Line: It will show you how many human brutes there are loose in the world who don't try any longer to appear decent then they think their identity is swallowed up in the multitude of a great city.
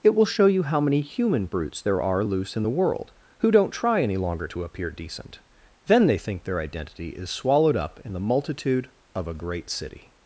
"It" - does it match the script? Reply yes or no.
yes